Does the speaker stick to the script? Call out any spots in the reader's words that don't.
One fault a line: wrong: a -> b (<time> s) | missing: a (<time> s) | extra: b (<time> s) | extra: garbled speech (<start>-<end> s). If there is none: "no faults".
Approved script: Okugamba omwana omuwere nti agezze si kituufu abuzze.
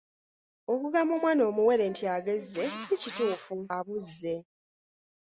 no faults